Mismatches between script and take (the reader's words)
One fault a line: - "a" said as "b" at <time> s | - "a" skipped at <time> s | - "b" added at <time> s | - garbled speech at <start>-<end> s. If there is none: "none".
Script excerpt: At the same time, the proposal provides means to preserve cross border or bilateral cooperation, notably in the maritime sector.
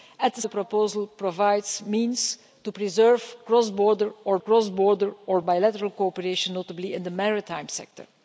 - "same time" skipped at 0.4 s
- "cross border or" added at 4.4 s